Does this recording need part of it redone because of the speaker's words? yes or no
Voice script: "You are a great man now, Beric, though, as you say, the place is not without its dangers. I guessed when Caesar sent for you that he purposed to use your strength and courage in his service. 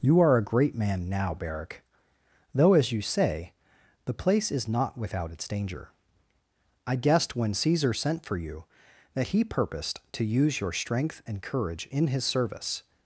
yes